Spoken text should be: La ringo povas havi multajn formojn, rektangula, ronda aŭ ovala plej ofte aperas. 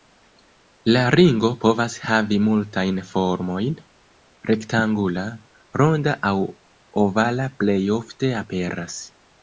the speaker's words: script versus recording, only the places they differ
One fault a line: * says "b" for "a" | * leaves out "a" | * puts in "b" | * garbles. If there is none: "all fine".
all fine